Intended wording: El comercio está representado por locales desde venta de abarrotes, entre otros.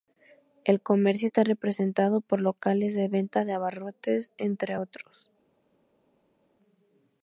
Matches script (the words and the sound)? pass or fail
fail